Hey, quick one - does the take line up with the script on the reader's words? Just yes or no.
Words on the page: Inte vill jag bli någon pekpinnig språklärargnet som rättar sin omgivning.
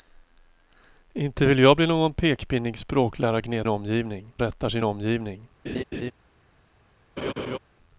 no